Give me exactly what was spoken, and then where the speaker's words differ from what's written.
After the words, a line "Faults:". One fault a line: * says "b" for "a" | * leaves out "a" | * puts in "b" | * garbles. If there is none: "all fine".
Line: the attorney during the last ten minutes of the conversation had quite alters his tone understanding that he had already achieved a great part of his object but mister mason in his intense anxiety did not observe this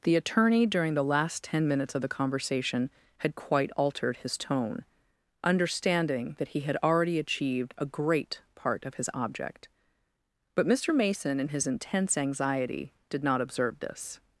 the attorney during the last ten minutes of the conversation had quite altered his tone understanding that he had already achieved a great part of his object but mister mason in his intense anxiety did not observe this
Faults:
* says "altered" for "alters"